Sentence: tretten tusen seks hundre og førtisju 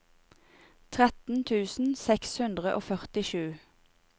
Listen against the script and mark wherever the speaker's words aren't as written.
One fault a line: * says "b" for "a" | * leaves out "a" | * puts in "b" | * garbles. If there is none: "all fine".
all fine